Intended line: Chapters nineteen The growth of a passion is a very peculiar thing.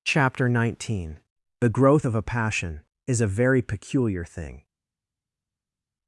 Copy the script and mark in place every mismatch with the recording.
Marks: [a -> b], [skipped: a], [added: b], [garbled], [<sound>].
[Chapters -> Chapter] nineteen The growth of a passion is a very peculiar thing.